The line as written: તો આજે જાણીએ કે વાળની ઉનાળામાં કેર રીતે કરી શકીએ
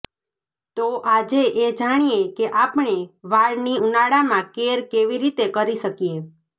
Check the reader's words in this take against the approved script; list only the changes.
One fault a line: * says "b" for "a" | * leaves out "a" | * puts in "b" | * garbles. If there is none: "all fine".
* puts in "એ"
* puts in "આપણે"
* puts in "કેવી"